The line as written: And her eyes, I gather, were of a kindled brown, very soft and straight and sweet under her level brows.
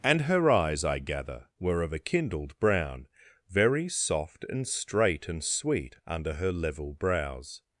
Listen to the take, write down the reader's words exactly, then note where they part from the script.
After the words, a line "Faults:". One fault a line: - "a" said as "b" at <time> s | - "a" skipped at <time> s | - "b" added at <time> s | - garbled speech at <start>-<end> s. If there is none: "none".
And her eyes, I gather, were of a kindled brown, very soft and straight and sweet under her level brows.
Faults:
none